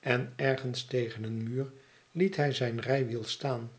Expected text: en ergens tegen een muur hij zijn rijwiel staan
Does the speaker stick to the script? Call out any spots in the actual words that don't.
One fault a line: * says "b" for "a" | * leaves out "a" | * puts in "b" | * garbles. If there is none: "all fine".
* puts in "liet"